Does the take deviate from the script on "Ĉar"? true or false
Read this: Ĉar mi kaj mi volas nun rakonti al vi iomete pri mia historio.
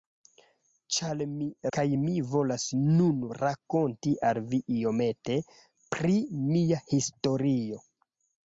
false